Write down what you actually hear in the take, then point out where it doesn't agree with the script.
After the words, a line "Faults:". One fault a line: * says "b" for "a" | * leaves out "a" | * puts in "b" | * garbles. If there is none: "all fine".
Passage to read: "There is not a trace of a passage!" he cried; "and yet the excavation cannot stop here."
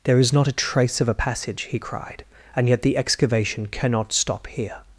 "There is not a trace of a passage!" he cried; "and yet the excavation cannot stop here."
Faults:
all fine